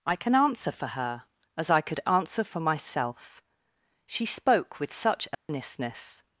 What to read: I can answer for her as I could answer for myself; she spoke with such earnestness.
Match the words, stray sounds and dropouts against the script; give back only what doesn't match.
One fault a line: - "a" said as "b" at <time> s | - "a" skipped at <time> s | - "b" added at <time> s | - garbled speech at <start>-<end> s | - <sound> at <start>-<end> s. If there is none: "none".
- dropout at 5.3-5.5 s